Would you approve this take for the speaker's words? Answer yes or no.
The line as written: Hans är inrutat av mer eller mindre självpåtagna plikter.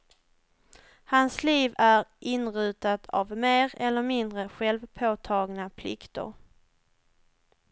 no